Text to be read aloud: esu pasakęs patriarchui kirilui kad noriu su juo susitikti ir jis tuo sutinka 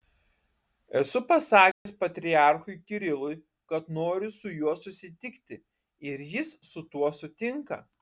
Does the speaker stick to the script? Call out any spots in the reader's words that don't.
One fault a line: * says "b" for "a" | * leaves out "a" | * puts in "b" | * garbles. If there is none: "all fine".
* puts in "su"